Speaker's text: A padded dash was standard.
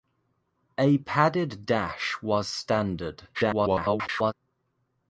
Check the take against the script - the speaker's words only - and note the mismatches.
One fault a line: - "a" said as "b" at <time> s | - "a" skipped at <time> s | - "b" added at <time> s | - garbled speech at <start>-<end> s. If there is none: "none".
- garbled speech at 3.3-4.3 s